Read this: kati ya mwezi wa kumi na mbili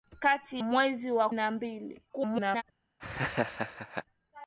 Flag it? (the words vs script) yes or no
yes